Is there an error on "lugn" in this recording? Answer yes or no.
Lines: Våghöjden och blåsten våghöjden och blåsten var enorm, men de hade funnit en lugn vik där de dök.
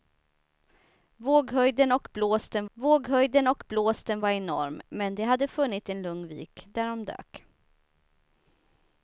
no